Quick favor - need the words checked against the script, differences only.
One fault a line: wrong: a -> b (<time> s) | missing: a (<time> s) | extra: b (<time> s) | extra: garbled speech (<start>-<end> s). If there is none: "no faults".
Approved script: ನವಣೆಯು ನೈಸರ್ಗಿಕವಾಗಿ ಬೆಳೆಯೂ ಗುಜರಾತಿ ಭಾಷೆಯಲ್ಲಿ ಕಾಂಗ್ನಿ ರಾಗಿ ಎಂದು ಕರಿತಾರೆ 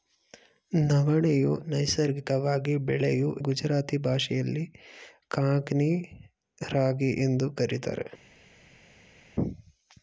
no faults